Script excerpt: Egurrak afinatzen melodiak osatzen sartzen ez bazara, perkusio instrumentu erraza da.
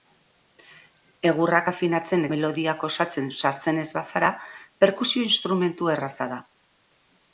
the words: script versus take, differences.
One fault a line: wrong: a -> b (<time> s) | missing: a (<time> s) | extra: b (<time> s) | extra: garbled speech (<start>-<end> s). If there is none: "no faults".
no faults